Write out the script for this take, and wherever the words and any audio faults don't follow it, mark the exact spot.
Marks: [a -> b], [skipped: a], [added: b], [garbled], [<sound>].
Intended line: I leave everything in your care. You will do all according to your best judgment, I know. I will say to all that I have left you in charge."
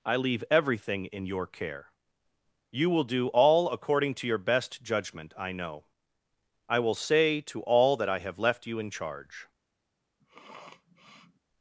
I leave everything in your care. You will do all according to your best judgment, I know. I will say to all that I have left you in charge." [sniff]